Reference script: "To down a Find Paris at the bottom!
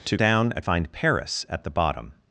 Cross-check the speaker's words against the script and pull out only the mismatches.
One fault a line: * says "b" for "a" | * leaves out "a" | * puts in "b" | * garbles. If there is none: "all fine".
all fine